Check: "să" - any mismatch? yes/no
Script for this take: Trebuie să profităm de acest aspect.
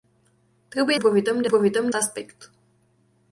yes